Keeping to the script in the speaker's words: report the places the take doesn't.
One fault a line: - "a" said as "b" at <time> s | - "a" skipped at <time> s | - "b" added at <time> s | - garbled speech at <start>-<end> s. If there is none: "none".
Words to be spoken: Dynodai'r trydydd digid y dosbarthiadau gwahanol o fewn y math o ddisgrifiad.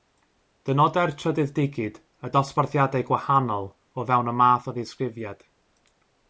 none